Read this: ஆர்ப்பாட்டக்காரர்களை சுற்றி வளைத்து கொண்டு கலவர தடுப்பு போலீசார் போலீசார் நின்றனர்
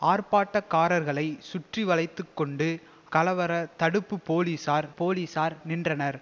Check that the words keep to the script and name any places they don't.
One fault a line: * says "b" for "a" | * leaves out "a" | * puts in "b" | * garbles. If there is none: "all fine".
all fine